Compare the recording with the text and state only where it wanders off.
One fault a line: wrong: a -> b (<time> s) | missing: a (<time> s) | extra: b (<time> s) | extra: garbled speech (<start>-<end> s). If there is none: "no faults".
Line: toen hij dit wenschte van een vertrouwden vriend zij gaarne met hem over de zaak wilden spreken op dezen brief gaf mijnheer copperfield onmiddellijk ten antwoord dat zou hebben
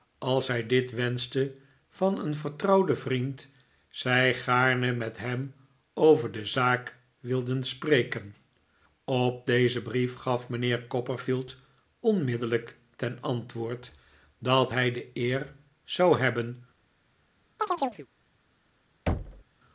wrong: toen -> als (0.2 s)
extra: hij de eer (14.7 s)